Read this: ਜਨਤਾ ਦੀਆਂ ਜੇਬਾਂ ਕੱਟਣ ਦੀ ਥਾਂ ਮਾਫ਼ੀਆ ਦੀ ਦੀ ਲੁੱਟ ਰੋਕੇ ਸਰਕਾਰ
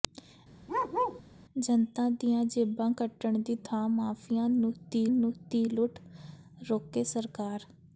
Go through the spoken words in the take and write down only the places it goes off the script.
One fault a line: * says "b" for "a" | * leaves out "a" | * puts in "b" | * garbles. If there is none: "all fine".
all fine